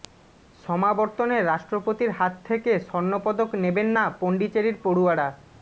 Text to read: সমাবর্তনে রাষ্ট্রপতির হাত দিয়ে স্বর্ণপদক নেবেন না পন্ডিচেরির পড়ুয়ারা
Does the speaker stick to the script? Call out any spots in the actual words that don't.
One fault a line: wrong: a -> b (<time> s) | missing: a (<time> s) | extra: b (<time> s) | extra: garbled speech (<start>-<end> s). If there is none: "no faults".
wrong: দিয়ে -> থেকে (2.5 s)